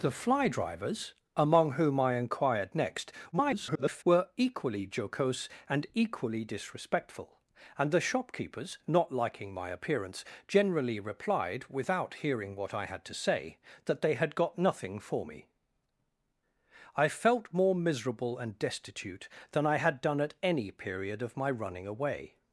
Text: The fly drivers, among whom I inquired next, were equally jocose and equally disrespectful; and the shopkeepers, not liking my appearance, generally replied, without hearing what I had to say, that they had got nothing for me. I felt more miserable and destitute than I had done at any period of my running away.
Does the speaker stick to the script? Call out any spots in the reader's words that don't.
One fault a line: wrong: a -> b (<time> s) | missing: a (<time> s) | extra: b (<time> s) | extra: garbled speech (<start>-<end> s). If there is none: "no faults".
extra: garbled speech (3.3-4.0 s)